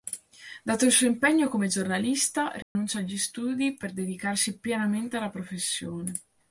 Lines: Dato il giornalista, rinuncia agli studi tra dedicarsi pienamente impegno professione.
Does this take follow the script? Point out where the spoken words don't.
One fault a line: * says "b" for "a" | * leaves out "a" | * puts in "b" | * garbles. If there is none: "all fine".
* puts in "suo impegno come"
* says "per" for "tra"
* says "alla" for "impegno"